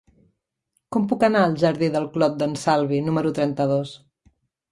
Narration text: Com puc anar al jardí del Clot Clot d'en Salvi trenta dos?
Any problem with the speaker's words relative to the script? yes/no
yes